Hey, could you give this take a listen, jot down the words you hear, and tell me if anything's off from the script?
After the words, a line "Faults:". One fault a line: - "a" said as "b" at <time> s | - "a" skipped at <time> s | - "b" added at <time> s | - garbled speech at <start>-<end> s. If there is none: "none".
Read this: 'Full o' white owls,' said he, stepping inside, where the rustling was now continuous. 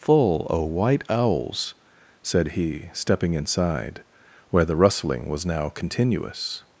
'Full o' white owls,' said he, stepping inside, where the rustling was now continuous.
Faults:
none